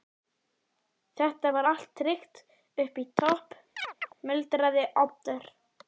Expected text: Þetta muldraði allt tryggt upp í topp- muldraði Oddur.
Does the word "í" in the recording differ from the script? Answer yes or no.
no